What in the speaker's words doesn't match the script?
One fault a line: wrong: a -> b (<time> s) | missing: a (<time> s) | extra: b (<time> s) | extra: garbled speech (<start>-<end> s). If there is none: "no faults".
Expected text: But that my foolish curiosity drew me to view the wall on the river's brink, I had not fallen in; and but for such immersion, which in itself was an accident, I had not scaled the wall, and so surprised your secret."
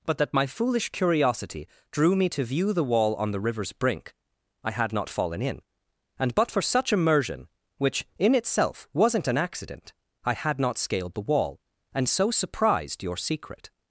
wrong: was -> wasn't (8.9 s)